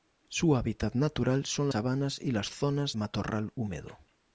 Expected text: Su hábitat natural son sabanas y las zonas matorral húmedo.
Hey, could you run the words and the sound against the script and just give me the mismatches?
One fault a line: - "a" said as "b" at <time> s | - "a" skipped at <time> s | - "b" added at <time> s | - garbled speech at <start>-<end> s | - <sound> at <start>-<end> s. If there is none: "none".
none